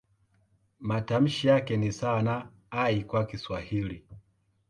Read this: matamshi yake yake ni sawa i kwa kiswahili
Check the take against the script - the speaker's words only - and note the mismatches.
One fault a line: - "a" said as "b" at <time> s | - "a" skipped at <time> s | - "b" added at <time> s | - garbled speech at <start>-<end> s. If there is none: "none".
- "yake" skipped at 1.8 s
- "na" added at 2.2 s